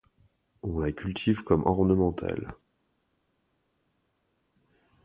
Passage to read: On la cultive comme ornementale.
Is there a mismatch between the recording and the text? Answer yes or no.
no